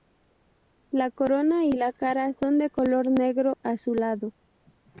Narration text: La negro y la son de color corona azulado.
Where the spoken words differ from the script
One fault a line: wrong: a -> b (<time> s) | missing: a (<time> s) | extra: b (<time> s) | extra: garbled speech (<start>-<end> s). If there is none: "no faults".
wrong: negro -> corona (1.1 s)
extra: cara (1.9 s)
wrong: corona -> negro (3.1 s)